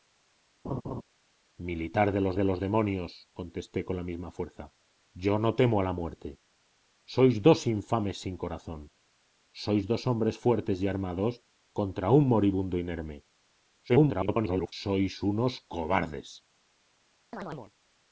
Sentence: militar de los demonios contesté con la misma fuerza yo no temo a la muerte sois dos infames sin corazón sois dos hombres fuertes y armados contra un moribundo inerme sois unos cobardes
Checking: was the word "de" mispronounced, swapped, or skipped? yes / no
no